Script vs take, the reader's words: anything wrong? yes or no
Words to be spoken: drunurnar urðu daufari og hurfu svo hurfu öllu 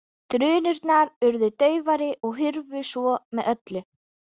yes